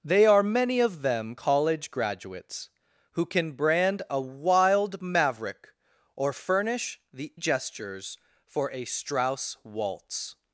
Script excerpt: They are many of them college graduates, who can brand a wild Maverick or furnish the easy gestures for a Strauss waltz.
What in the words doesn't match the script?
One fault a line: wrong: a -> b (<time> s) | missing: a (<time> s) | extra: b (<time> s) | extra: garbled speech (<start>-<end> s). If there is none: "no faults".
missing: easy (7.3 s)